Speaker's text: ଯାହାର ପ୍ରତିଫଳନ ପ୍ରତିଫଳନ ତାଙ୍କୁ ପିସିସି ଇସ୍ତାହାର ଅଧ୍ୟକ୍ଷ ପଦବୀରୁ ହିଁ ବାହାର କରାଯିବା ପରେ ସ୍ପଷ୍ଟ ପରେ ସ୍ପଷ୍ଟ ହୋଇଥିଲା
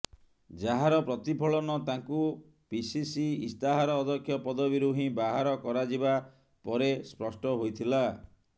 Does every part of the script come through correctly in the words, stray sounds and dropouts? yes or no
no